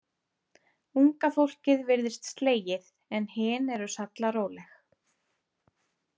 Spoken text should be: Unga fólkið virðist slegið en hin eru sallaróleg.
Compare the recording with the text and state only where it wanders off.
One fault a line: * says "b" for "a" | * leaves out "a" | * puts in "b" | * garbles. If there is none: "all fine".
all fine